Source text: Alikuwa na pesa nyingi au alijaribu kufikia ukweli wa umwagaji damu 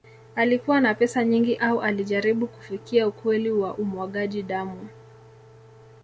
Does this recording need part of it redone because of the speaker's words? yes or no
no